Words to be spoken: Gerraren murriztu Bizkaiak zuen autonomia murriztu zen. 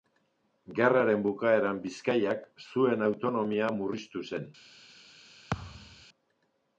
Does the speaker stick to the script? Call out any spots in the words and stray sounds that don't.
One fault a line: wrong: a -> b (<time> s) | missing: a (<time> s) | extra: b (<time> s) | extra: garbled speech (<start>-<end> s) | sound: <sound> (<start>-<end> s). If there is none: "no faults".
wrong: murriztu -> bukaeran (1.3 s)
sound: thud (5.5-6.1 s)